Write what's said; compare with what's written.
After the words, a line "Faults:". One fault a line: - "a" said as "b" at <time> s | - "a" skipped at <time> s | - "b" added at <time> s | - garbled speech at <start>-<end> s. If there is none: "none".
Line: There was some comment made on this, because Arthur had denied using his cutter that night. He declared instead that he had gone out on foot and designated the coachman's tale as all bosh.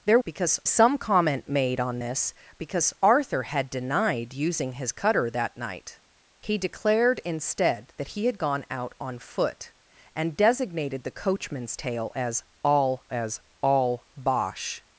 There because some comment made on this, because Arthur had denied using his cutter that night. He declared instead that he had gone out on foot and designated the coachman's tale as all as all bosh.
Faults:
- "was" said as "because" at 0.2 s
- "as all" added at 13.1 s